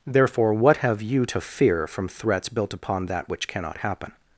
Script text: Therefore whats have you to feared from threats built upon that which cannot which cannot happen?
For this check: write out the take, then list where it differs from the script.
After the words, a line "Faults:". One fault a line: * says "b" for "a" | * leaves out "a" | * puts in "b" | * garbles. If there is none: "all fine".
Therefore what have you to fear from threats built upon that which cannot happen?
Faults:
* says "what" for "whats"
* says "fear" for "feared"
* leaves out "which cannot"